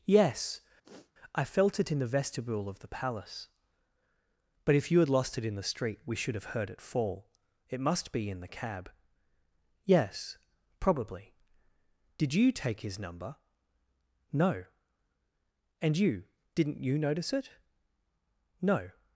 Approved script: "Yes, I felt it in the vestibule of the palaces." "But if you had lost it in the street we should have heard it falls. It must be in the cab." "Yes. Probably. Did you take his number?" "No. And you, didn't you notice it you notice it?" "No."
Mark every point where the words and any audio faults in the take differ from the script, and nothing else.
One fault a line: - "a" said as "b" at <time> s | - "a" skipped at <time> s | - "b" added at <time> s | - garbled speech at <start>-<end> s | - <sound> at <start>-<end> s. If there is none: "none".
- sniff at 0.8-1.1 s
- "palaces" said as "palace" at 2.9 s
- "falls" said as "fall" at 6.8 s
- "you notice it" skipped at 17.5 s